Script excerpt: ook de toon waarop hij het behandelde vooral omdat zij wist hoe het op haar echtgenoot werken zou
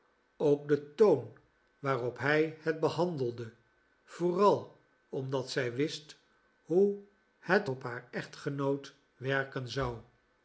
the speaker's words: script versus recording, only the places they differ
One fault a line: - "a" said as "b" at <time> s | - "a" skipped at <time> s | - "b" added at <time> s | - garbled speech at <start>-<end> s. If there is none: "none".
none